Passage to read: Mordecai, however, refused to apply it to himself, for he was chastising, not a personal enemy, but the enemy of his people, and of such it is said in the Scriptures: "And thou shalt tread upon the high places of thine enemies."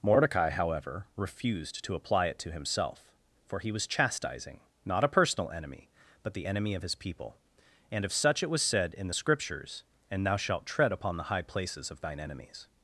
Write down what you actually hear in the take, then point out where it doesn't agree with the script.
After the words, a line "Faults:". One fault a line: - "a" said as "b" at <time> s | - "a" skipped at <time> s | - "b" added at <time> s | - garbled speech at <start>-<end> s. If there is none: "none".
Mordecai, however, refused to apply it to himself, for he was chastising, not a personal enemy, but the enemy of his people, and of such it was said in the Scriptures: "And thou shalt tread upon the high places of thine enemies."
Faults:
- "is" said as "was" at 8.5 s